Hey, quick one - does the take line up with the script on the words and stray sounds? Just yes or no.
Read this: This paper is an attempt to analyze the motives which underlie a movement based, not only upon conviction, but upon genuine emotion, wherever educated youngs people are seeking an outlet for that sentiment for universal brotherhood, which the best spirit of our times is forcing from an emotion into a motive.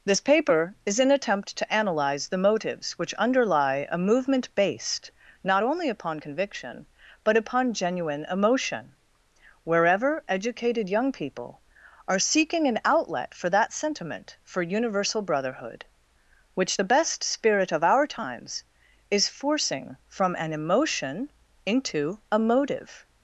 no